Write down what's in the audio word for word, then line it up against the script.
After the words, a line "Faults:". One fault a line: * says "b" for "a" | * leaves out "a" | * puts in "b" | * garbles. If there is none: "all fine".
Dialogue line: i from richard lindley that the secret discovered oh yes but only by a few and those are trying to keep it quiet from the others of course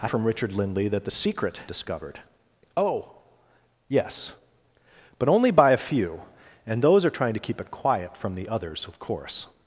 i from richard lindley that the secret discovered oh yes but only by a few and those are trying to keep it quiet from the others of course
Faults:
all fine